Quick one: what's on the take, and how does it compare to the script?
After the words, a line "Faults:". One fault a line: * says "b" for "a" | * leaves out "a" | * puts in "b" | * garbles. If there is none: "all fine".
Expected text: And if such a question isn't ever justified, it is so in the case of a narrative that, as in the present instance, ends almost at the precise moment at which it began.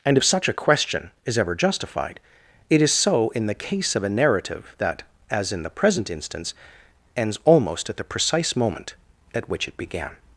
And if such a question is ever justified, it is so in the case of a narrative that, as in the present instance, ends almost at the precise moment at which it began.
Faults:
* says "is" for "isn't"